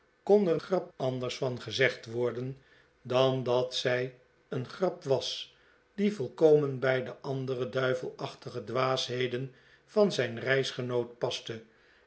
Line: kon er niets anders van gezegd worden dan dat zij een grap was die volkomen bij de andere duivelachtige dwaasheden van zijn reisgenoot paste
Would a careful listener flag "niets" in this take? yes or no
yes